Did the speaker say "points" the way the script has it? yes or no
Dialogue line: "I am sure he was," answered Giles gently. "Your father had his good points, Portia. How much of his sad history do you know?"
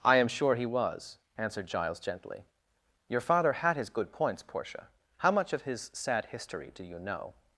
yes